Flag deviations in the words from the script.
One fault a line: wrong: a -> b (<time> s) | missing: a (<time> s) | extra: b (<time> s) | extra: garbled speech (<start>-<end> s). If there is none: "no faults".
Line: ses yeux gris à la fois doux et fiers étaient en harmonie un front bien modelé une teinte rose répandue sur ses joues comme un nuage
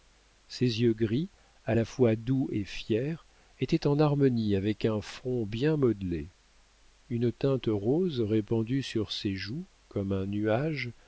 extra: avec (4.6 s)